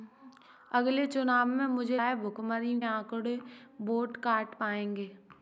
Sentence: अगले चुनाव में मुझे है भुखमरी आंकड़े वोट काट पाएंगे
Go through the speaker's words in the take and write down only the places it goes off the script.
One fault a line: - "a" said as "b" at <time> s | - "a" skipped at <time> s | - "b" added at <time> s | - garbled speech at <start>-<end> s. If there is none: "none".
none